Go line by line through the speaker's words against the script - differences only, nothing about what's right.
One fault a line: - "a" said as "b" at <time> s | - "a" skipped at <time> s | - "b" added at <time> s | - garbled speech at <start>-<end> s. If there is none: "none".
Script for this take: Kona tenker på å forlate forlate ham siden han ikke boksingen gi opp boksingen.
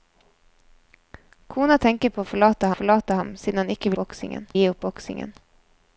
none